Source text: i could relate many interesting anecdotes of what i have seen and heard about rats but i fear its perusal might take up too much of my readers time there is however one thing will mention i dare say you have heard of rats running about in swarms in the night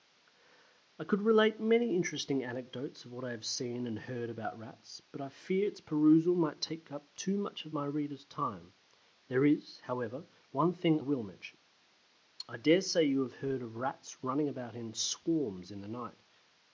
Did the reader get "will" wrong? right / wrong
right